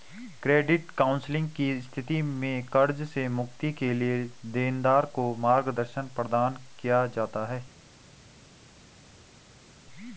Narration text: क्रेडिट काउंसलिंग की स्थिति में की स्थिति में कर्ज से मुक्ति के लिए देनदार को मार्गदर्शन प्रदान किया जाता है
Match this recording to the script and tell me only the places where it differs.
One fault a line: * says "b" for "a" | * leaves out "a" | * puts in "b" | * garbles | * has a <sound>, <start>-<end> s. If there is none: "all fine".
* leaves out "की स्थिति में"